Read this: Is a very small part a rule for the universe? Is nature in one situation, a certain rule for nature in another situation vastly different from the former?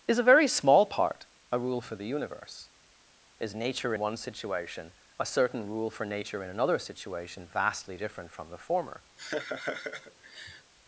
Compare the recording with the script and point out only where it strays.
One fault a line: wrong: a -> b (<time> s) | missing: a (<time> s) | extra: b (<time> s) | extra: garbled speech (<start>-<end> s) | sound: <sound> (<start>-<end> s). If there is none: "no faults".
missing: in (3.9 s)
sound: laugh (9.2-10.7 s)